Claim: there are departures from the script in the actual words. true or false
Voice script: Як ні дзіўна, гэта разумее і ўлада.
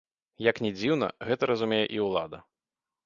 false